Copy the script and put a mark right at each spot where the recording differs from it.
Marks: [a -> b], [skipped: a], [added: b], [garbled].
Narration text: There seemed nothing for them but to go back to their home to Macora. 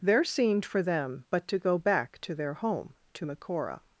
There seemed [skipped: nothing] for them but to go back to their home to Macora.